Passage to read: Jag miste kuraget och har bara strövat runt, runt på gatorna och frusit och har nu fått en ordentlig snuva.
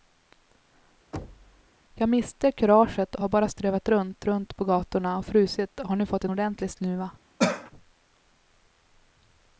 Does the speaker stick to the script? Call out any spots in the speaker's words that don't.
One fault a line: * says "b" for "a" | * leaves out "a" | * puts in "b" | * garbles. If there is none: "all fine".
all fine